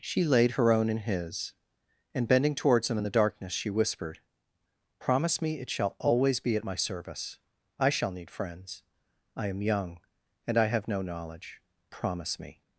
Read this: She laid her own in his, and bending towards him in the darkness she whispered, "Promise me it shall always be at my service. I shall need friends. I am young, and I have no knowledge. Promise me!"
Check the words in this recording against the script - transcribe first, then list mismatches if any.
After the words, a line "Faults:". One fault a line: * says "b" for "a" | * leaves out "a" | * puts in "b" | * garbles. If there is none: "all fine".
She laid her own in his, and bending towards him in the darkness she whispered, "Promise me it shall always be at my service. I shall need friends. I am young, and I have no knowledge. Promise me!"
Faults:
all fine